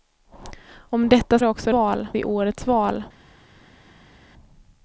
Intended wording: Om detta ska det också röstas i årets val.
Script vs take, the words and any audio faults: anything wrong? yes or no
yes